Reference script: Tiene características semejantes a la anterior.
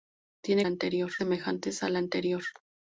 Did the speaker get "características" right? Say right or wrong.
wrong